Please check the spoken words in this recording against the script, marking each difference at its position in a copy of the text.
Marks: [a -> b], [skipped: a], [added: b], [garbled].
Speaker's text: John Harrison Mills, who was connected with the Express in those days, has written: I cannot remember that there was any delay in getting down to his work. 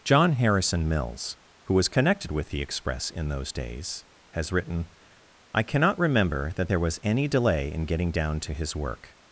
John Harrison Mills, who was connected with the Express in those days, has written: I cannot remember that there was any delay in getting down to his work.